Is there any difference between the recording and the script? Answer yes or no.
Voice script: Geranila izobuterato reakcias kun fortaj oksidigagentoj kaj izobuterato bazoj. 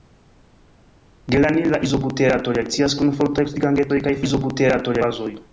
no